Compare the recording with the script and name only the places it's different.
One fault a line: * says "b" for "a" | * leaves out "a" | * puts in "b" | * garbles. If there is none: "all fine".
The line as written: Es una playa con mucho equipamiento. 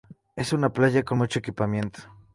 all fine